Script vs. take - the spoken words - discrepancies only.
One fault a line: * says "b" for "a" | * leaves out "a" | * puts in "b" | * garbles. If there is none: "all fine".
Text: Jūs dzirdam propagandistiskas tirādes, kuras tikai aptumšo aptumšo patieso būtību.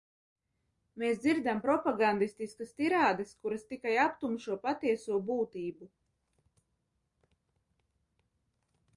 * says "Mēs" for "Jūs"
* leaves out "aptumšo"